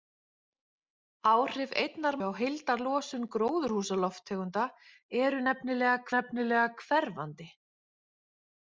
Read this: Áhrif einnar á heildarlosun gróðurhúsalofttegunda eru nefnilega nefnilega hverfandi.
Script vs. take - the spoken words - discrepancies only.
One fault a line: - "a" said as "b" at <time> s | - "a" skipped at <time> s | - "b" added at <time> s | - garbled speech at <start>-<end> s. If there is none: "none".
none